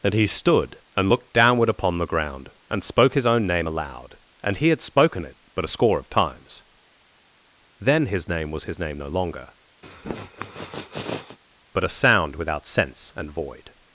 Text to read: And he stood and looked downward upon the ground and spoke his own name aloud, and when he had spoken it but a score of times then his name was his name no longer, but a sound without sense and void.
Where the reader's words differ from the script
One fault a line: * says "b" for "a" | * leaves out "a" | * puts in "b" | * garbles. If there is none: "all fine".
* leaves out "when"